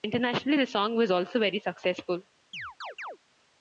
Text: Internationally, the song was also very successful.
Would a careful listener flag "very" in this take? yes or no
no